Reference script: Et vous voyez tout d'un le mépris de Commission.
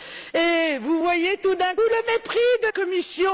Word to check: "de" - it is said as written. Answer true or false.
true